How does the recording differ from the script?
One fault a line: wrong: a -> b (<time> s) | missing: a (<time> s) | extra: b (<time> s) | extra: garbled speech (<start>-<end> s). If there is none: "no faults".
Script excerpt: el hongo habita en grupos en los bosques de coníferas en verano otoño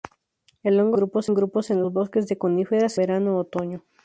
wrong: habita -> grupos (0.9 s)
missing: en (3.0 s)